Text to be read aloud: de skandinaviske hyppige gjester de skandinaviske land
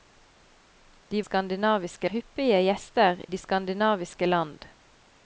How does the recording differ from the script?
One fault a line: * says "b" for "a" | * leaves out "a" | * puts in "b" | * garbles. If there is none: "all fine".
all fine